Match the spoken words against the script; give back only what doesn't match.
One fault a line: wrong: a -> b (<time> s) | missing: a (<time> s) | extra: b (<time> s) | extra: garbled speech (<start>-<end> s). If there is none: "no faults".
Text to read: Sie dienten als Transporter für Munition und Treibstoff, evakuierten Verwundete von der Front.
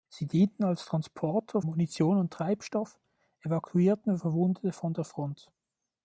missing: für (1.6 s)